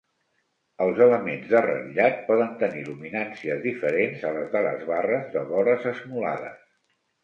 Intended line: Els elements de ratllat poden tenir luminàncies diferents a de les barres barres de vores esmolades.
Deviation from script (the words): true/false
true